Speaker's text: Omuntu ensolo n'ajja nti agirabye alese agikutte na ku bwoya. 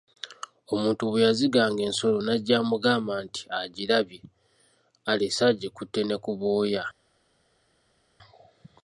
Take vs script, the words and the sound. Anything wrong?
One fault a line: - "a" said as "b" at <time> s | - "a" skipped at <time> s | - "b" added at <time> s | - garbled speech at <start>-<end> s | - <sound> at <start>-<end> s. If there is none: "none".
- "bwe yaziganga" added at 1.1 s
- "amugamba" added at 2.6 s
- "na" said as "ne" at 6.0 s